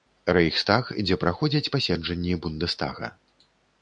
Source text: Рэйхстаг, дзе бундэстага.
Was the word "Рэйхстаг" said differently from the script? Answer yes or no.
no